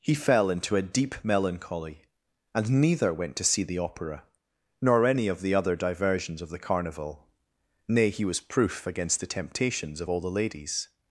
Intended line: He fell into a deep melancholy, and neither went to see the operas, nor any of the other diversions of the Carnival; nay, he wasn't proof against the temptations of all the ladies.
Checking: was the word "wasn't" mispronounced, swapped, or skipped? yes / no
yes